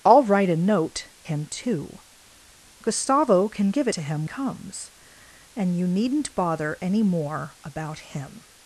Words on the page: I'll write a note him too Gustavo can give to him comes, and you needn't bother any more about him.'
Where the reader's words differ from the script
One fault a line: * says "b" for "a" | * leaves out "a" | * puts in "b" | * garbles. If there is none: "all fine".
all fine